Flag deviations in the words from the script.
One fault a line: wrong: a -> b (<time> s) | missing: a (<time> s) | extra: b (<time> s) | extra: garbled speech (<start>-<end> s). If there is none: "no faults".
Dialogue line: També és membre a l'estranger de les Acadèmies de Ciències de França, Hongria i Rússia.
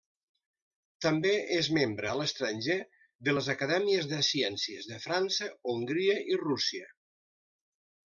no faults